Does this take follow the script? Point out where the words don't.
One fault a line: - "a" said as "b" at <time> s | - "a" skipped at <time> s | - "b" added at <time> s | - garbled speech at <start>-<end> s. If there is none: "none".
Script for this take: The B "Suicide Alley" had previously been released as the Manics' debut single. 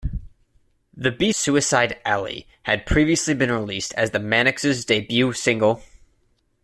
none